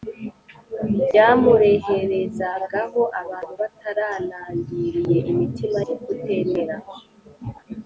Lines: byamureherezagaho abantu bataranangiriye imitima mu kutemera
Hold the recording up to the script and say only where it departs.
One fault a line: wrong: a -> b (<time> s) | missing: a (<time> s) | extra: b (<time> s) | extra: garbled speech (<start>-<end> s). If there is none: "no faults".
no faults